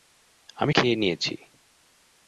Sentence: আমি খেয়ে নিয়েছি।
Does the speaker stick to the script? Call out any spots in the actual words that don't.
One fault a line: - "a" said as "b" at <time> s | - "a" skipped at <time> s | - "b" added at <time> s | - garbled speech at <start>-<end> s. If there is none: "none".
none